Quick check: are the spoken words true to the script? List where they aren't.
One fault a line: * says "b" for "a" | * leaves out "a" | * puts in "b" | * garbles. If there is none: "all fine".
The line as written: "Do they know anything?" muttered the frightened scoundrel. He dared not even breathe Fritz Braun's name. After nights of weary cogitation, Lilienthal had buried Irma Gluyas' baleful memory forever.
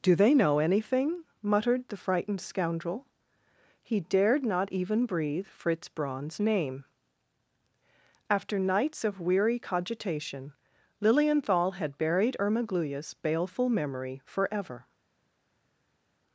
all fine